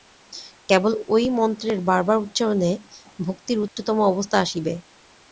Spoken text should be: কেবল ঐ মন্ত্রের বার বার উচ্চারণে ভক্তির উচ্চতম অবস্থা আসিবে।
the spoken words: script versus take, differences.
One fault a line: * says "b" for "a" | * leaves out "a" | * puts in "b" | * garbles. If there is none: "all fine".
all fine